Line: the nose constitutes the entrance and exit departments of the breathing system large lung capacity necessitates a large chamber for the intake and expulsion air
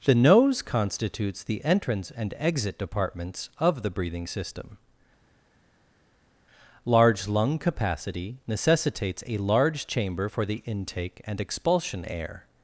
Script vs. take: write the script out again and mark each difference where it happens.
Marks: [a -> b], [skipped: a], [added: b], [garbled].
the nose constitutes the entrance and exit departments of the breathing system large lung capacity necessitates a large chamber for the intake and expulsion air